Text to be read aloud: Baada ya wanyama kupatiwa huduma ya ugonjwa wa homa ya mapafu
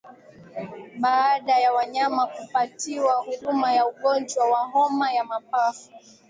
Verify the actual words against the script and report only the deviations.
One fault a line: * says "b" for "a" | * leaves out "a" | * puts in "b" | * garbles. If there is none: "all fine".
all fine